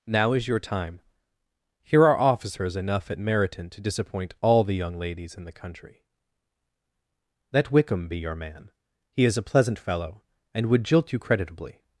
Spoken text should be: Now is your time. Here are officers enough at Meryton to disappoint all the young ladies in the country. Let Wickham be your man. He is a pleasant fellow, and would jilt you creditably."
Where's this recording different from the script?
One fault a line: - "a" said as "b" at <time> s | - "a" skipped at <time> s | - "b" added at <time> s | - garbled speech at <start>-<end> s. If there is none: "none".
none